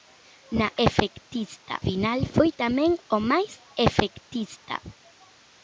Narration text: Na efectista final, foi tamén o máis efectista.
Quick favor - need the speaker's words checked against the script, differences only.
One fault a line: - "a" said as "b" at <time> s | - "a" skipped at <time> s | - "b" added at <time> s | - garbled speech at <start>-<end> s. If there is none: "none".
none